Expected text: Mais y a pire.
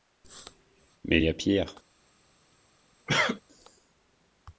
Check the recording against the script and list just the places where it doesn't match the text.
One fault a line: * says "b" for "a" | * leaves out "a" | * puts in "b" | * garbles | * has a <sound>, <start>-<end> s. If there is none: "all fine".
* has a cough, 3.1-3.4 s